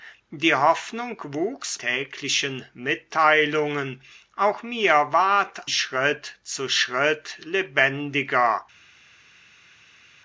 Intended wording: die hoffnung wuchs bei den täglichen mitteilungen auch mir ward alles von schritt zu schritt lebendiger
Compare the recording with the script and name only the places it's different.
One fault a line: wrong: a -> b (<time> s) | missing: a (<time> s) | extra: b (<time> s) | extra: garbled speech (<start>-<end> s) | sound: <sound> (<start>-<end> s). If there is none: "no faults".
missing: bei den (1.8 s)
missing: alles von (5.7 s)